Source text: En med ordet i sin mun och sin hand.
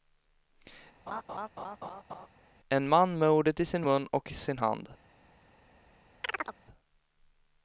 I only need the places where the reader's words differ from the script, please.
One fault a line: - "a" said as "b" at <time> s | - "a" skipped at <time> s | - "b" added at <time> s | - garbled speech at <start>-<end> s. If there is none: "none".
- "man" added at 2.9 s